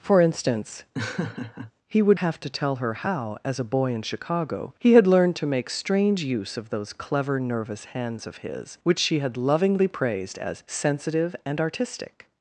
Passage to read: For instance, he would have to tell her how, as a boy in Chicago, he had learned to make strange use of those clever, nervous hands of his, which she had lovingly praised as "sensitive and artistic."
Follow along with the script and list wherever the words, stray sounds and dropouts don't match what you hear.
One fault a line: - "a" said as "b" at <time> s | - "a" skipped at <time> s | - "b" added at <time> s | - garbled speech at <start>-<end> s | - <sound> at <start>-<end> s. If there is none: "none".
- laugh at 0.9-1.7 s